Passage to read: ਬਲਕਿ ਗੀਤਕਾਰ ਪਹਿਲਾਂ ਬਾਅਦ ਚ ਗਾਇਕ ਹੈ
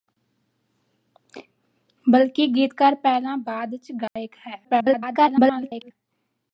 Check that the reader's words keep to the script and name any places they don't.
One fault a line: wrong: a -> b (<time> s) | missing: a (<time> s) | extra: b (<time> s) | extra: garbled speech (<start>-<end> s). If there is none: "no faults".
extra: garbled speech (4.6-5.9 s)